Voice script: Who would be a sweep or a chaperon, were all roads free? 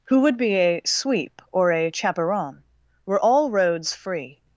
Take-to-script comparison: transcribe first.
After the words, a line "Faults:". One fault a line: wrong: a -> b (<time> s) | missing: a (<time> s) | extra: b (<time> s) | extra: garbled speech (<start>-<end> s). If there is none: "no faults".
Who would be a sweep or a chaperon, were all roads free?
Faults:
no faults